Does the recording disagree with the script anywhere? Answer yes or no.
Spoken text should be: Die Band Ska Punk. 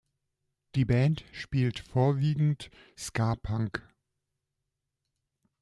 yes